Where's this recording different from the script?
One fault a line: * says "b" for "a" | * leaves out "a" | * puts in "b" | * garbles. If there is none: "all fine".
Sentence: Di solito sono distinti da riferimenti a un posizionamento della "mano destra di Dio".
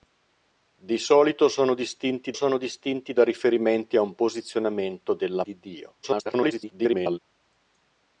* puts in "sono distinti"
* leaves out "mano destra"
* garbles